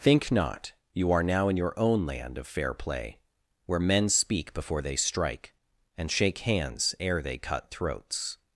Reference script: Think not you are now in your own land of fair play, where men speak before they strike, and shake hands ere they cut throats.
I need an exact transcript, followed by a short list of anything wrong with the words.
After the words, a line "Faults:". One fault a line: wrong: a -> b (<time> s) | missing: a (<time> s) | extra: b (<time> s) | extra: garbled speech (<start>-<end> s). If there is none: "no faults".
Think not you are now in your own land of fair play, where men speak before they strike, and shake hands ere they cut throats.
Faults:
no faults